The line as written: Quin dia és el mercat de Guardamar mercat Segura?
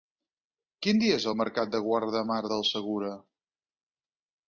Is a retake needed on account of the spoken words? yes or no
yes